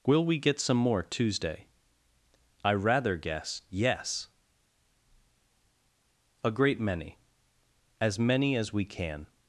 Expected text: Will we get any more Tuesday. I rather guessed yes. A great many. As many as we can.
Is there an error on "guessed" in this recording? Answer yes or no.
yes